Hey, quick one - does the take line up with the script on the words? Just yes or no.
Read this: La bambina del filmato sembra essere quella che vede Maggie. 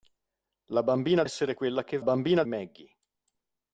no